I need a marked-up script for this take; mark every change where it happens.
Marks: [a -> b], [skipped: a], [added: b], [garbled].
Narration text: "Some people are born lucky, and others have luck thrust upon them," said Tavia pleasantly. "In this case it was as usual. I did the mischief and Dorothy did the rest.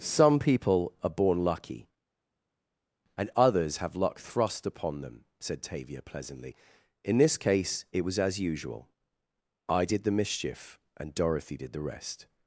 "Some people are born lucky, and others have luck thrust upon them," said Tavia pleasantly. "In this case it was as usual. I did the mischief and Dorothy did the rest.